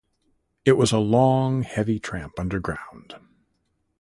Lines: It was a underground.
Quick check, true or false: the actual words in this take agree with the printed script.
false